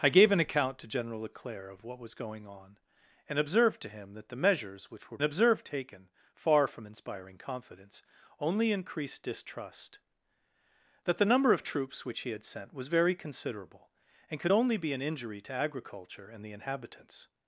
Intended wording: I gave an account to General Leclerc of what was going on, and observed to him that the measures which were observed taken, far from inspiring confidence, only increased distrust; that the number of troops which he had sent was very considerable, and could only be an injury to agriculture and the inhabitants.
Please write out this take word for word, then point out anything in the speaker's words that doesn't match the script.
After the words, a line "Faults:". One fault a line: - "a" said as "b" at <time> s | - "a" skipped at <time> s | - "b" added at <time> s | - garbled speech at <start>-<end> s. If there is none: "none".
I gave an account to General Leclerc of what was going on, and observed to him that the measures which were observed taken, far from inspiring confidence, only increased distrust; that the number of troops which he had sent was very considerable, and could only be an injury to agriculture and the inhabitants.
Faults:
none